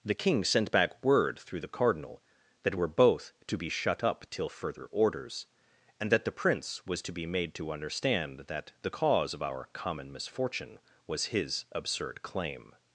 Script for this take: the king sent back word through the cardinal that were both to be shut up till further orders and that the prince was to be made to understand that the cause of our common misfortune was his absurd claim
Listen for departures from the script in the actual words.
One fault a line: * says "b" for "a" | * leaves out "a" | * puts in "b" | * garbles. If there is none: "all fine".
all fine